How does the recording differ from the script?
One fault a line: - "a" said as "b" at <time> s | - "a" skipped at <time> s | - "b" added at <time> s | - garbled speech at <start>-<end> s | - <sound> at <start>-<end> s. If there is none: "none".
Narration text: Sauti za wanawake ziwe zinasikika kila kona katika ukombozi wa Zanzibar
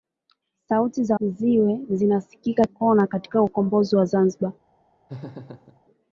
- "wanawake" skipped at 1.2 s
- "kila" skipped at 2.6 s
- laugh at 5.1-5.8 s